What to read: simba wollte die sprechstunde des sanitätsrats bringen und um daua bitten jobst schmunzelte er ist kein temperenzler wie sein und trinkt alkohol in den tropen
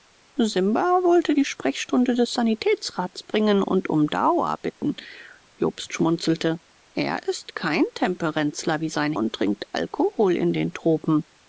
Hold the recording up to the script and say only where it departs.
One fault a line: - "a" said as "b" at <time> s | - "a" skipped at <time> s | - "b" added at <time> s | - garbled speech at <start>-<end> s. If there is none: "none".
none